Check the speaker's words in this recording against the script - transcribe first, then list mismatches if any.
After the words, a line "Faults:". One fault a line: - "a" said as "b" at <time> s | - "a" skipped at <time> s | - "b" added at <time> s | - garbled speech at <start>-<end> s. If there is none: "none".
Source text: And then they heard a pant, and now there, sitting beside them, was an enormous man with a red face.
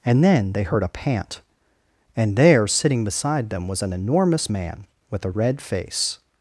And then they heard a pant, and there, sitting beside them, was an enormous man with a red face.
Faults:
- "now" skipped at 2.4 s